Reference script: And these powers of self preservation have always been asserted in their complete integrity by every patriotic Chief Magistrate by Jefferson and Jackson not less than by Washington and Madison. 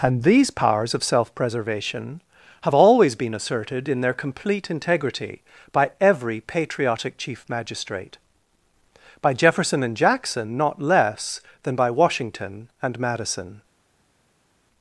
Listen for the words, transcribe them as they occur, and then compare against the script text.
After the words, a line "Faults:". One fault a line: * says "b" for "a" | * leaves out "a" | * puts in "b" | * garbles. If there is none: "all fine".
And these powers of self preservation have always been asserted in their complete integrity by every patriotic Chief Magistrate by Jefferson and Jackson not less than by Washington and Madison.
Faults:
all fine